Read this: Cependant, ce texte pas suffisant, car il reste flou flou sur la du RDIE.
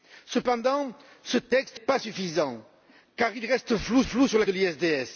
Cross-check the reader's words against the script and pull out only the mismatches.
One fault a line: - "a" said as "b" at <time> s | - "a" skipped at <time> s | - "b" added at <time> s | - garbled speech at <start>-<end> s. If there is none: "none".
none